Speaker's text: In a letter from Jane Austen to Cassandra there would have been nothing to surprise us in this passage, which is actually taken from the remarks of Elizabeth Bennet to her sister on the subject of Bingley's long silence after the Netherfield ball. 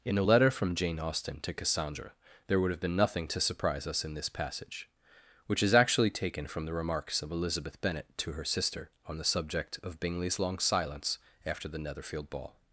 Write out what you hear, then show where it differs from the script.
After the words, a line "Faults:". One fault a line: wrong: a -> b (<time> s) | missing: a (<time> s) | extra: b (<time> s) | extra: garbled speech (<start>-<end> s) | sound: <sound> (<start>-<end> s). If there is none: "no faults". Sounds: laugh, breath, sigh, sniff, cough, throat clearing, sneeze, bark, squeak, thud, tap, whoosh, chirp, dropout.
In a letter from Jane Austen to Cassandra there would have been nothing to surprise us in this passage, which is actually taken from the remarks of Elizabeth Bennet to her sister on the subject of Bingley's long silence after the Netherfield ball.
Faults:
no faults